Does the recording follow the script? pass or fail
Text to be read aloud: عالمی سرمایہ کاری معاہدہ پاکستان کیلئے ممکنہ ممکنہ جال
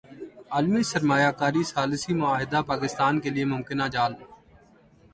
fail